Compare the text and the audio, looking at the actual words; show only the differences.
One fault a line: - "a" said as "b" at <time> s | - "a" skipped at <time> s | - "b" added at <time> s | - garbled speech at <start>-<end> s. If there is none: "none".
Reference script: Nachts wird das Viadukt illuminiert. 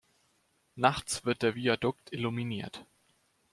- "das" said as "der" at 1.4 s